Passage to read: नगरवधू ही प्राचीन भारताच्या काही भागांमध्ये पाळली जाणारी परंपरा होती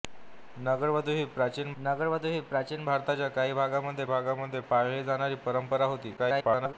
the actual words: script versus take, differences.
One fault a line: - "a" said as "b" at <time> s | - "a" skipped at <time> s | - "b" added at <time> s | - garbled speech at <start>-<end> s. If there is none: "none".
- "नगरवधू ही प्राचीन" added at 1.8 s
- "भागांमध्ये" added at 4.1 s
- garbled speech at 6.2-6.7 s